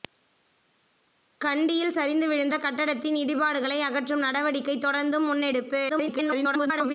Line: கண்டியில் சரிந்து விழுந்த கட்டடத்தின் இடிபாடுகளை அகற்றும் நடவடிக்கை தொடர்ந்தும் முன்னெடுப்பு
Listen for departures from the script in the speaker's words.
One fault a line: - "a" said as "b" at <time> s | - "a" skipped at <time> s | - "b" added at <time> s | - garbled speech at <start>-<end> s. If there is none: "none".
- garbled speech at 5.9-6.9 s